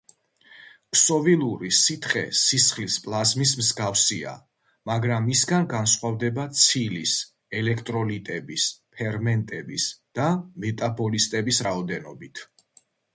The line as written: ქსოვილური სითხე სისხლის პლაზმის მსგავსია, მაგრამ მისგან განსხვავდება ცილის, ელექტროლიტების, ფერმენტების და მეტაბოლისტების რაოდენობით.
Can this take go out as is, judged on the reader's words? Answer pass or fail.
pass